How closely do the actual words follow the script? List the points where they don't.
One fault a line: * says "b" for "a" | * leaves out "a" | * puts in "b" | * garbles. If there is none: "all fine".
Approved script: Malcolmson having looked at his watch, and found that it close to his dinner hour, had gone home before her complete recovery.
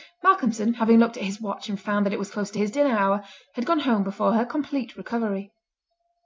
* puts in "was"